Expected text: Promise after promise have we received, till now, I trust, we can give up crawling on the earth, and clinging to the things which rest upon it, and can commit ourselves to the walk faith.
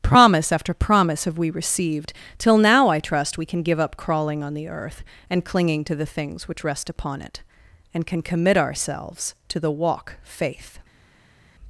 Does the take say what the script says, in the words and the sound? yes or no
yes